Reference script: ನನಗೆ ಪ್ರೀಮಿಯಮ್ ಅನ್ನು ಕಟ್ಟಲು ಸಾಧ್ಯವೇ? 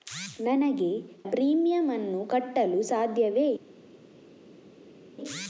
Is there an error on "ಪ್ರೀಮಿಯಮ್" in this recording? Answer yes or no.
no